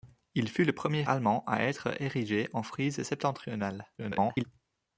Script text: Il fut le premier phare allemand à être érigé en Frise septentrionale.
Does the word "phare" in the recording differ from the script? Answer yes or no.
yes